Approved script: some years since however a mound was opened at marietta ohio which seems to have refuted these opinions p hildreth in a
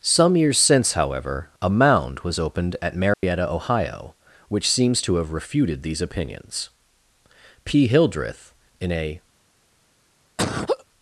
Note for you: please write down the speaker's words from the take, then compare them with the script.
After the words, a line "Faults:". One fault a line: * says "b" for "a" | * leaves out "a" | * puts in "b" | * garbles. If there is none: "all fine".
some years since however a mound was opened at marietta ohio which seems to have refuted these opinions p hildreth in a
Faults:
all fine